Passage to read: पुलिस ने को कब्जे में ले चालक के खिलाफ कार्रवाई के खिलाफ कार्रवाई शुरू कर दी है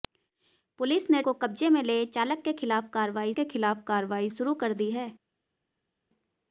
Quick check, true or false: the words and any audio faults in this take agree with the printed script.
true